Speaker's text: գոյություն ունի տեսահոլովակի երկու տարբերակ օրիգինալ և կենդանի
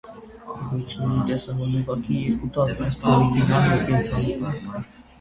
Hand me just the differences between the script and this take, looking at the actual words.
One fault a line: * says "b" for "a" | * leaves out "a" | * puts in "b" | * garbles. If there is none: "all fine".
all fine